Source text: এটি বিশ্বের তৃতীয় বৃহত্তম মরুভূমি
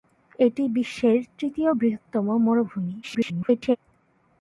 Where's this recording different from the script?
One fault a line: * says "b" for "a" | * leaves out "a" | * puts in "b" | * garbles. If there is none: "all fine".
* garbles